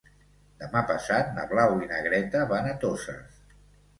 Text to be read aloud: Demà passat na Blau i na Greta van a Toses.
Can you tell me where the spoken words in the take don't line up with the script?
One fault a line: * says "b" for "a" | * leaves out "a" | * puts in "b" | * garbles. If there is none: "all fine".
all fine